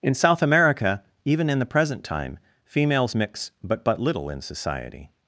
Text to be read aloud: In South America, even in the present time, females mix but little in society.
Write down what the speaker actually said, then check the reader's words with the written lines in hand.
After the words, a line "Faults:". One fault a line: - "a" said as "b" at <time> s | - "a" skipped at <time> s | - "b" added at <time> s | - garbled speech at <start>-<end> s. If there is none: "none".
In South America, even in the present time, females mix but but little in society.
Faults:
- "but" added at 3.8 s